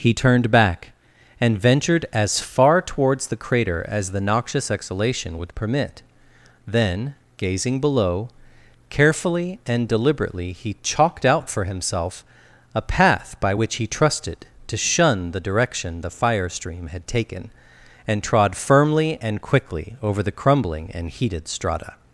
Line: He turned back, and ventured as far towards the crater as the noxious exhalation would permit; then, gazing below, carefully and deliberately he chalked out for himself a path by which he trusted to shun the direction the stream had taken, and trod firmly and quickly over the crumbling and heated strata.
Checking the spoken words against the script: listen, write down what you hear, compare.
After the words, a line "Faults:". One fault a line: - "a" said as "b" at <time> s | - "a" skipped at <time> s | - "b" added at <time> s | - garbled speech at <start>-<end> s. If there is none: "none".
He turned back, and ventured as far towards the crater as the noxious exhalation would permit; then, gazing below, carefully and deliberately he chalked out for himself a path by which he trusted to shun the direction the fire stream had taken, and trod firmly and quickly over the crumbling and heated strata.
Faults:
- "fire" added at 16.1 s